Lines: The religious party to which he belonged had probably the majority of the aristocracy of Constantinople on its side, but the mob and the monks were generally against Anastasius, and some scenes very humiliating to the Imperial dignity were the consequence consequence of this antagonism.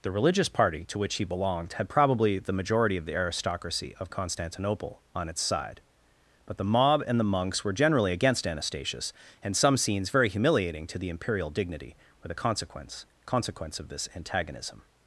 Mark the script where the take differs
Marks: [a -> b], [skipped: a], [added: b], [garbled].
The religious party to which he belonged had probably the majority of the aristocracy of Constantinople on its side, but the mob and the monks were generally against Anastasius, and some scenes very humiliating to the Imperial dignity were the consequence consequence of this antagonism.